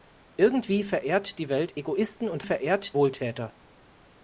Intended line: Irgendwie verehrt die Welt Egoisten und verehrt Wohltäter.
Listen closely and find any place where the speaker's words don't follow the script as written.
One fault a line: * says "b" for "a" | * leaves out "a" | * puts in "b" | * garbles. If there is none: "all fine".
all fine